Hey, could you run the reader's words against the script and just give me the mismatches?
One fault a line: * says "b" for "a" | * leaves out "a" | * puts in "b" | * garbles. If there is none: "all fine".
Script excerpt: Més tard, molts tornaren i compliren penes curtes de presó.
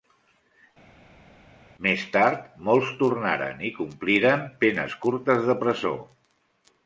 all fine